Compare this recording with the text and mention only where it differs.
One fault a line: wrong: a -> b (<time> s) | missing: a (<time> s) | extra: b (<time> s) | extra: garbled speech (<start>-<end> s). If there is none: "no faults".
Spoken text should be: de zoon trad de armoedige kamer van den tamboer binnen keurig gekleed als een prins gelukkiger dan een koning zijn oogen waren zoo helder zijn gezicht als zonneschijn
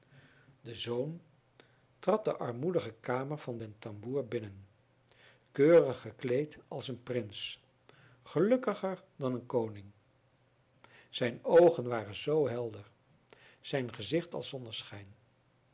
no faults